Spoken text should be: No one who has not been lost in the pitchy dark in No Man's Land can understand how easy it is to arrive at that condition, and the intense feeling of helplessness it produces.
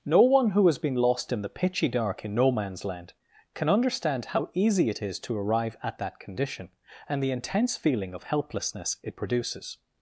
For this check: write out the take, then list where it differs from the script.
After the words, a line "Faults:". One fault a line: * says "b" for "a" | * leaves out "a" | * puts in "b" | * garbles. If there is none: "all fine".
No one who has been lost in the pitchy dark in No Man's Land can understand how easy it is to arrive at that condition, and the intense feeling of helplessness it produces.
Faults:
* leaves out "not"